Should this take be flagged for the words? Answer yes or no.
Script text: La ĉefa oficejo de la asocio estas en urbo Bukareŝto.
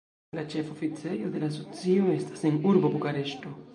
no